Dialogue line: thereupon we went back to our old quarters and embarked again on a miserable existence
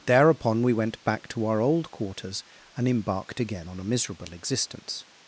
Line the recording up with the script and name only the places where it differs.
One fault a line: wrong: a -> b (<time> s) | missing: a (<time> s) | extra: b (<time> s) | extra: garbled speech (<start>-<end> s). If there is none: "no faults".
no faults